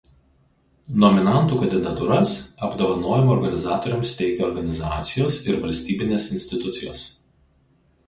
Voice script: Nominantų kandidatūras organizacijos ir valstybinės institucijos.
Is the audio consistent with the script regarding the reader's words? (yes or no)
no